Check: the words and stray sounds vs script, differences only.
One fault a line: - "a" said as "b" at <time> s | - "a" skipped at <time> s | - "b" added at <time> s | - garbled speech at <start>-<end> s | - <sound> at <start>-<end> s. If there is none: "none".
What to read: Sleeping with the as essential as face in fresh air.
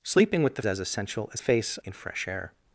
none